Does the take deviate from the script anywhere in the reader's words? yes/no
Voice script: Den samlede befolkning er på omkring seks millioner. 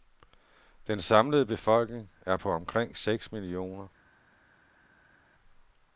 no